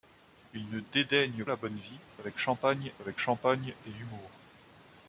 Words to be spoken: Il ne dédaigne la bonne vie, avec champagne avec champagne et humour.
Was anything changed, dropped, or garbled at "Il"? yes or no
no